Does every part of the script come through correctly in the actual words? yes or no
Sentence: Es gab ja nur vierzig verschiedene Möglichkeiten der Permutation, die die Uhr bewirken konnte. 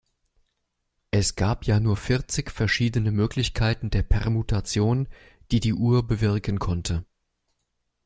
yes